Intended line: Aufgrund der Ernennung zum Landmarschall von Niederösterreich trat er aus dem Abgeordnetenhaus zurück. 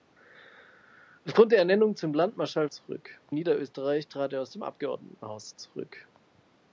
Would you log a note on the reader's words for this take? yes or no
yes